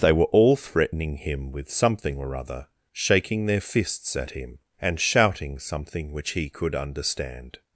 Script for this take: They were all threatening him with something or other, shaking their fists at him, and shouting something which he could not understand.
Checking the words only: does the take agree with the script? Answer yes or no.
no